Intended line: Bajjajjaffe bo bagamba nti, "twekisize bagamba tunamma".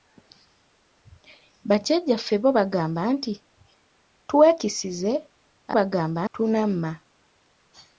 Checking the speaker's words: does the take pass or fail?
pass